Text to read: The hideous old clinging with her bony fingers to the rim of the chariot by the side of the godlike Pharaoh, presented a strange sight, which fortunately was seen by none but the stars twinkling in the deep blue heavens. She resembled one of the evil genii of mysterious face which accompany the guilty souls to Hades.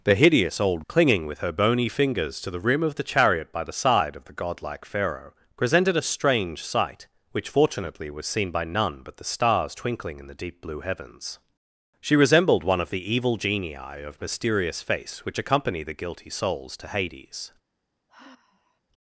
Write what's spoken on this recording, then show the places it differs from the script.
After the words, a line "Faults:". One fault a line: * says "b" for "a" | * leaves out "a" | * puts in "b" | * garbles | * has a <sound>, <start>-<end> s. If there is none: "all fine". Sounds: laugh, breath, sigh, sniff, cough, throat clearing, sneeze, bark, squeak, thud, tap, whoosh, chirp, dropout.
The hideous old clinging with her bony fingers to the rim of the chariot by the side of the godlike Pharaoh, presented a strange sight, which fortunately was seen by none but the stars twinkling in the deep blue heavens. She resembled one of the evil genii of mysterious face which accompany the guilty souls to Hades.
Faults:
* has a sigh, 18.1-18.8 s